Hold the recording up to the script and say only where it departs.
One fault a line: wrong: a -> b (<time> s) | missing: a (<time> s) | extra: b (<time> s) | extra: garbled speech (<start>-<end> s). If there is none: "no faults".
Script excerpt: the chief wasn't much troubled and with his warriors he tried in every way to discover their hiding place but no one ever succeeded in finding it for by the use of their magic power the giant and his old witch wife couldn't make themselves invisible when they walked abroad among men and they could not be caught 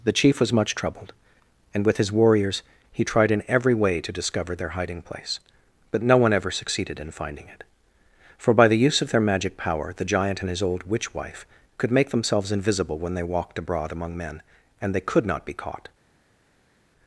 wrong: wasn't -> was (0.4 s)
wrong: couldn't -> could (11.8 s)